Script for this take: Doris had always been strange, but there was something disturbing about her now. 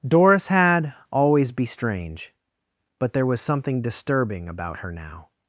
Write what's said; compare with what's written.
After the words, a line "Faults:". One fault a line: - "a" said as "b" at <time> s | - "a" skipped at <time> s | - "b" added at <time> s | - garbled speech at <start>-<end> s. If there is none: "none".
Doris had always be strange, but there was something disturbing about her now.
Faults:
- "been" said as "be" at 1.5 s